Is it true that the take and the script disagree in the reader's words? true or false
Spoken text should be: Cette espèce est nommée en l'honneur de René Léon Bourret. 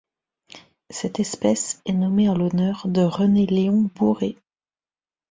false